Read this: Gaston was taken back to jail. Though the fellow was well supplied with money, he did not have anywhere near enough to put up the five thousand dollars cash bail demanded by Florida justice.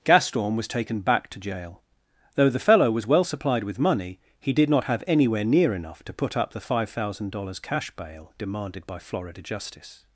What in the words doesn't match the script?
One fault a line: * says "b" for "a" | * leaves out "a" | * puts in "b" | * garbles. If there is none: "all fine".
all fine